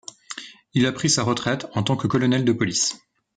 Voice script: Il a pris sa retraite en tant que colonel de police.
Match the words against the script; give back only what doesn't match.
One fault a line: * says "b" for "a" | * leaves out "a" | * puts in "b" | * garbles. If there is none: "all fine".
all fine